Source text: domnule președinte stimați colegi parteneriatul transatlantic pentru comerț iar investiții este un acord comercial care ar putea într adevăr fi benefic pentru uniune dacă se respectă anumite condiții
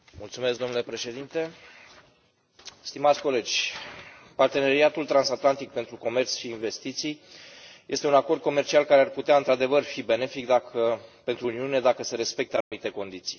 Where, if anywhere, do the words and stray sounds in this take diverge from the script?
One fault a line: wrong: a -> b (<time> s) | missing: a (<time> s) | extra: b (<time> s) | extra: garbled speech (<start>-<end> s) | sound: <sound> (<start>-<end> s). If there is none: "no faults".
wrong: iar -> și (6.3 s)
sound: dropout (12.6-12.7 s)